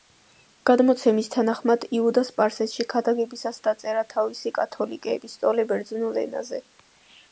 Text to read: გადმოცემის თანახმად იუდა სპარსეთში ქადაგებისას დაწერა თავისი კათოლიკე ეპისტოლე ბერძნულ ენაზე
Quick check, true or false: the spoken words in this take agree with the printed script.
true